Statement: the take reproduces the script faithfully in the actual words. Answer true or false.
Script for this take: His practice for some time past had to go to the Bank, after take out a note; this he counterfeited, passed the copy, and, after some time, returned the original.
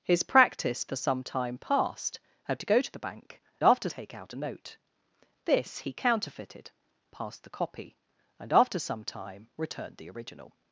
true